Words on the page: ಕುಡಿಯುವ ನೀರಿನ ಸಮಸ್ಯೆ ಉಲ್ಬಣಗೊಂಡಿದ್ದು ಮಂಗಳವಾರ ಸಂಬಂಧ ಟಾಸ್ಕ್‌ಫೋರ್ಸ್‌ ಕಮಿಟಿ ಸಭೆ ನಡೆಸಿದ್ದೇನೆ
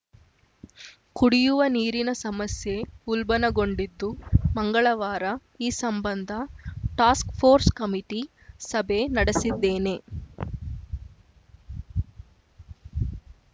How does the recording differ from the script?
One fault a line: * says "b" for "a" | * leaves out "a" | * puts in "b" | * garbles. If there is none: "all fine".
* puts in "ಈ"